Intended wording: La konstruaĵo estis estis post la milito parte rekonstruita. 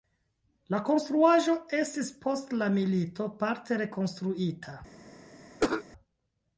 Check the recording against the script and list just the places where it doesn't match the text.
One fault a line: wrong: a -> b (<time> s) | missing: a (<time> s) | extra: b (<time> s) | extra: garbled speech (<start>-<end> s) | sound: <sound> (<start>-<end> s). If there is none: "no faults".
missing: estis (2.1 s)
sound: cough (5.6-5.8 s)